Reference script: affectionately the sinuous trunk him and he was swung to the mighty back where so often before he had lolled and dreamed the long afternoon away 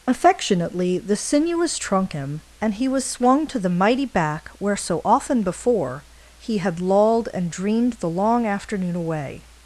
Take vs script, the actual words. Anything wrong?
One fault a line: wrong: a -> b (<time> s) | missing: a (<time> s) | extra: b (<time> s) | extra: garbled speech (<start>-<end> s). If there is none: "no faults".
no faults